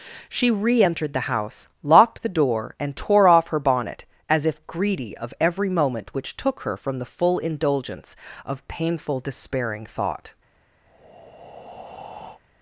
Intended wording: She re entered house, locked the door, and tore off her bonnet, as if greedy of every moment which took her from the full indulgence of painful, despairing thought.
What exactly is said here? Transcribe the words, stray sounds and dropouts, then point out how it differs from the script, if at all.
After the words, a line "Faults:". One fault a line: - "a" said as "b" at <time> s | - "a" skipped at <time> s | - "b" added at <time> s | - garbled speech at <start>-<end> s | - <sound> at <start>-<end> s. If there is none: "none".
She re entered the house, locked the door, and tore off her bonnet, as if greedy of every moment which took her from the full indulgence of painful, despairing thought.
Faults:
- "the" added at 1.1 s
- breath at 10.9-12.4 s